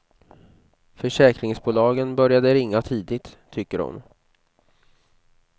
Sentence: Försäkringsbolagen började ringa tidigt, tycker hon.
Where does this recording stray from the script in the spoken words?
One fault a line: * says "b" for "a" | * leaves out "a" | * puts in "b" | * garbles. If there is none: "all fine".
all fine